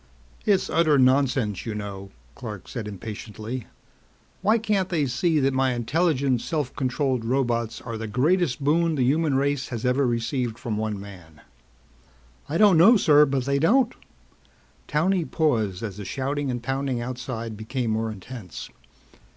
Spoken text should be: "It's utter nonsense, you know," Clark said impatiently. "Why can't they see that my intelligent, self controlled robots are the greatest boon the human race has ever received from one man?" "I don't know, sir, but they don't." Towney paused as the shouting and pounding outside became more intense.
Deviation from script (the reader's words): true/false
false